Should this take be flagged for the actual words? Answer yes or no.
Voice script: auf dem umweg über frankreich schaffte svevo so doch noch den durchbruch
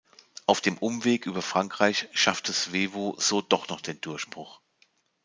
no